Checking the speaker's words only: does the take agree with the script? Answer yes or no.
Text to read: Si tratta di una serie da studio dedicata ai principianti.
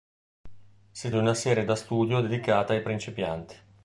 no